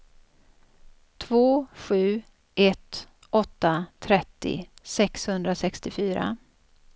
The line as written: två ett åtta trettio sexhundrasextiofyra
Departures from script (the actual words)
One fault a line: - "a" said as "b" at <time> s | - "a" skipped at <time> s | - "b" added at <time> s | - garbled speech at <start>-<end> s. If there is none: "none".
- "sju" added at 1.8 s